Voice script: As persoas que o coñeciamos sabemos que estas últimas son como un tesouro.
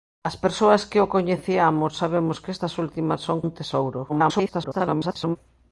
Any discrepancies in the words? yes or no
yes